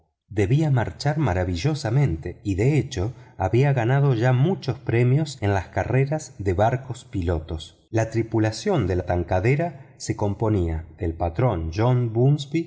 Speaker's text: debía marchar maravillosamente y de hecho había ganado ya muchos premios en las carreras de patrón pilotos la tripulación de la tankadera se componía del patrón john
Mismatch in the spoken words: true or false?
true